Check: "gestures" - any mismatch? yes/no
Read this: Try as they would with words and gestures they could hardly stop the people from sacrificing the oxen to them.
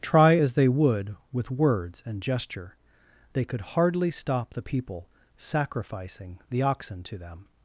yes